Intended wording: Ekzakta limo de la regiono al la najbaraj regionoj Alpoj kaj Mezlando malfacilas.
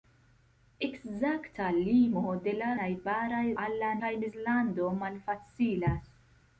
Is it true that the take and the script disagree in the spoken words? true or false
true